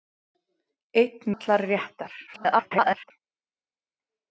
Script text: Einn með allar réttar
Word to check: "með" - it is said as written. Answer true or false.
false